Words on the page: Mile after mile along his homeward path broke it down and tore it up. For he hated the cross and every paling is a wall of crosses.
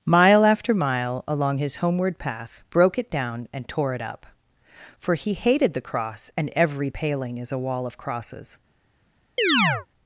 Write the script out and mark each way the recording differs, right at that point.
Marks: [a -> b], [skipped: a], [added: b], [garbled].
Mile after mile along his homeward path broke it down and tore it up. For he hated the cross and every paling is a wall of crosses.